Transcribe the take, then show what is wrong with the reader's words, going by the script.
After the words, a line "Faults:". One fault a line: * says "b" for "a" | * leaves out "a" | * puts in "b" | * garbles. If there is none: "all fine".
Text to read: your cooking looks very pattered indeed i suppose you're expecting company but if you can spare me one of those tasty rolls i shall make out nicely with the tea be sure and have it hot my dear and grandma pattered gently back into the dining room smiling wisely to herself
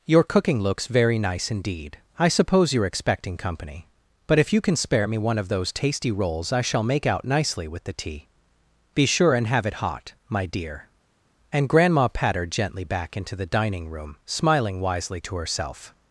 your cooking looks very nice indeed i suppose you're expecting company but if you can spare me one of those tasty rolls i shall make out nicely with the tea be sure and have it hot my dear and grandma pattered gently back into the dining room smiling wisely to herself
Faults:
* says "nice" for "pattered"